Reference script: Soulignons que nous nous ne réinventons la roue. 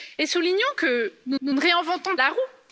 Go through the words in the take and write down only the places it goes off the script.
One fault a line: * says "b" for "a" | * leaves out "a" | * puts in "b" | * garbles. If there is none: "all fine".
all fine